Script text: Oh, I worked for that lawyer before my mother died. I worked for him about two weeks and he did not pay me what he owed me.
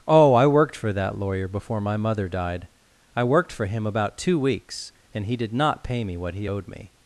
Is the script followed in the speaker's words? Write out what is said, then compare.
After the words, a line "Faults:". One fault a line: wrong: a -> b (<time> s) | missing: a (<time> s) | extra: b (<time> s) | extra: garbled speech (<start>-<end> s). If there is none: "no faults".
Oh, I worked for that lawyer before my mother died. I worked for him about two weeks and he did not pay me what he owed me.
Faults:
no faults